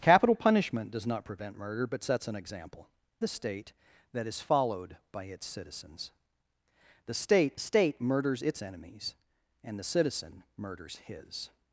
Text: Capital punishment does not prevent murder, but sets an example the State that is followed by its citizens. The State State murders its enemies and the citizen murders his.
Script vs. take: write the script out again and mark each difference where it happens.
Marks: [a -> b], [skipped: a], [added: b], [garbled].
Capital punishment does not prevent murder, but sets an example the State that is followed by its citizens. The State State murders its enemies and the citizen murders his.